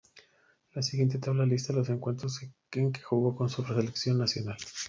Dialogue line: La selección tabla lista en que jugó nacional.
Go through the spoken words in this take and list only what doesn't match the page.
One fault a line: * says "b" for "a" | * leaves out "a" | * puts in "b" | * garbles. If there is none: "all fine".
* says "siguiente" for "selección"
* puts in "los encuentros"
* puts in "con su selección"